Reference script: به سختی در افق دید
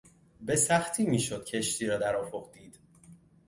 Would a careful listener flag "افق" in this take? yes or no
no